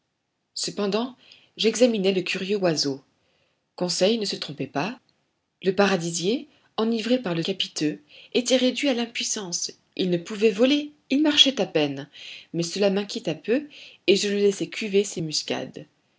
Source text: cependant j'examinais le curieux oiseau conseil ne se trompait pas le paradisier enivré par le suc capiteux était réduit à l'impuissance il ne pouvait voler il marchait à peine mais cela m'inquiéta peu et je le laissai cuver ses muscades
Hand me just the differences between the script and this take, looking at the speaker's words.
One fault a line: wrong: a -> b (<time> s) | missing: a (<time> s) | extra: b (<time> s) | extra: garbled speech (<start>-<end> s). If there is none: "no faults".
missing: suc (7.4 s)